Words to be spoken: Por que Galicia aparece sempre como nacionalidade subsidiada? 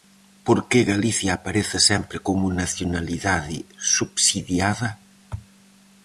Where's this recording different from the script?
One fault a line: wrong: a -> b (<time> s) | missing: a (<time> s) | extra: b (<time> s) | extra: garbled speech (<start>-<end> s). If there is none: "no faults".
no faults